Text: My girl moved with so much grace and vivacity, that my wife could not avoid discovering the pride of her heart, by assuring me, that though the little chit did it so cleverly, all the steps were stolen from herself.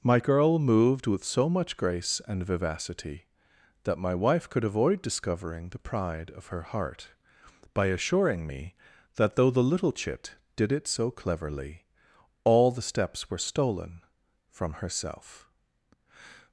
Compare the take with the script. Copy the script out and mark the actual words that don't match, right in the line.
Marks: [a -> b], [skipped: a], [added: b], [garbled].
My girl moved with so much grace and vivacity, that my wife could [skipped: not] avoid discovering the pride of her heart, by assuring me, that though the little chit did it so cleverly, all the steps were stolen from herself.